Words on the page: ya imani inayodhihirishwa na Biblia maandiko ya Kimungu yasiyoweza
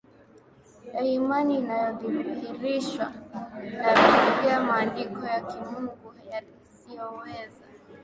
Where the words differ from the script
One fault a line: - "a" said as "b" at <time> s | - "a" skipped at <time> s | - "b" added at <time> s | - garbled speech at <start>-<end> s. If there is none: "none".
none